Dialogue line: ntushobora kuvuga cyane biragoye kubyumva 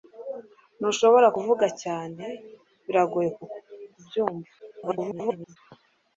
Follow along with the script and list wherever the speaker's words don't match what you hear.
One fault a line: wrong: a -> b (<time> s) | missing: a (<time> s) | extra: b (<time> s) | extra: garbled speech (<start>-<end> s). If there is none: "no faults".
extra: garbled speech (4.6-5.6 s)